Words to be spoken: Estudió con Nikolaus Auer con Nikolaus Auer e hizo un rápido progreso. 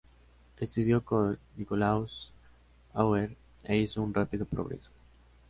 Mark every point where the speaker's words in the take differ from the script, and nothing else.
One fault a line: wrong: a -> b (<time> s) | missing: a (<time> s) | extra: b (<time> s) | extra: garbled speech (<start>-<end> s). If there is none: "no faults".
missing: con Nikolaus Auer (3.4 s)